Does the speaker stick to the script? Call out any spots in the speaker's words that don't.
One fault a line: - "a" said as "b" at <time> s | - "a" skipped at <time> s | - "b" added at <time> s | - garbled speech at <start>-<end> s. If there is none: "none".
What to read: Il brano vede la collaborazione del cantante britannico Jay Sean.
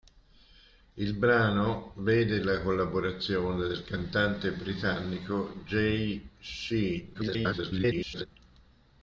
- garbled speech at 7.1-8.3 s